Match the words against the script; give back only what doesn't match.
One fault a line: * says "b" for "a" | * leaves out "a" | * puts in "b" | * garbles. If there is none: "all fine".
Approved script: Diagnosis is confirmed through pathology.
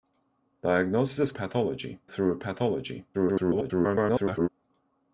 * says "pathology" for "confirmed"
* garbles